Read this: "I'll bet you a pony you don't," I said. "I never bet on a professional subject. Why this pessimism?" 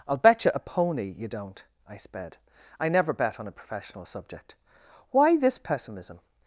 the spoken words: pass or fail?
fail